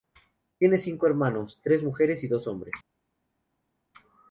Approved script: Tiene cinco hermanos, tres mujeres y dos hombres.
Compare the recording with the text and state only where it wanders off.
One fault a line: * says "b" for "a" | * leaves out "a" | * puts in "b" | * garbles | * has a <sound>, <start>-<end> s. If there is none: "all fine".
all fine